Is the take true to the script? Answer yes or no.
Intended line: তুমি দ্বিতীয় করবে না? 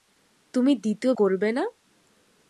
yes